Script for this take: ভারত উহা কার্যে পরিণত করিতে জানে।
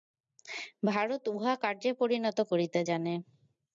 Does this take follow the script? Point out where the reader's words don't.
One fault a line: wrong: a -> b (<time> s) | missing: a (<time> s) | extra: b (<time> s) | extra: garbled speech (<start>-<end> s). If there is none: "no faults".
no faults